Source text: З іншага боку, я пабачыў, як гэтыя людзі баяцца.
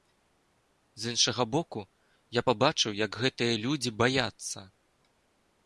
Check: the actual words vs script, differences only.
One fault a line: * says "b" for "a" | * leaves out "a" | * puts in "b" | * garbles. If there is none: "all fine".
all fine